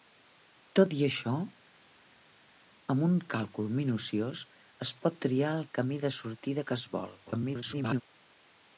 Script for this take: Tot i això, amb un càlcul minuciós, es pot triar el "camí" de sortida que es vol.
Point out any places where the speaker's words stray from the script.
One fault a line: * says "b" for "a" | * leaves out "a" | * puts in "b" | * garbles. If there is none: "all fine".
* garbles